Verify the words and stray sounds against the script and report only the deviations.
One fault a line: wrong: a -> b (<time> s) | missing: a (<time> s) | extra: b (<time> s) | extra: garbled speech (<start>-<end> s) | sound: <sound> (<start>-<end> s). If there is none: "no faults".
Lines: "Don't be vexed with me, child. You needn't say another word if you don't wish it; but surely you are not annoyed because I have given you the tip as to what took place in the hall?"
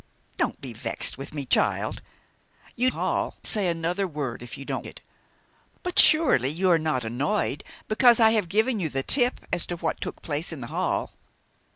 wrong: needn't -> hall (2.9 s)
missing: wish (4.9 s)